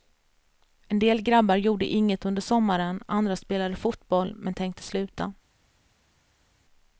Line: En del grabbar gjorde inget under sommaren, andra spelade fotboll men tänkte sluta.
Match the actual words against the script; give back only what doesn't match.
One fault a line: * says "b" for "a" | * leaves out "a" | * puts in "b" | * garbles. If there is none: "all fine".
all fine